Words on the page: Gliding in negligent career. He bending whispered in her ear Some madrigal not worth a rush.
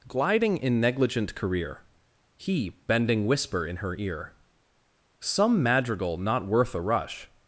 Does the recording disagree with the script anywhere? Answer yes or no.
yes